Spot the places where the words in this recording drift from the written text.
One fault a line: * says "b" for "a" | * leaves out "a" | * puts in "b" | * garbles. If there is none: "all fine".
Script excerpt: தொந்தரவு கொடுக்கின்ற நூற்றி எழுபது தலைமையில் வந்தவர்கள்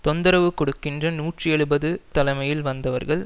all fine